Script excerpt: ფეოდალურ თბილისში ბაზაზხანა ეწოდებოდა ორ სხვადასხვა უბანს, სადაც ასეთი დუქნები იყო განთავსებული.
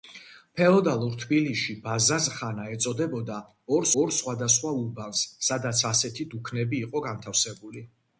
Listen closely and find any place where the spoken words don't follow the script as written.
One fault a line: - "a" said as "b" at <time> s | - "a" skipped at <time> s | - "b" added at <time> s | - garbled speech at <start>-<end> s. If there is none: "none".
- "ორ" added at 4.0 s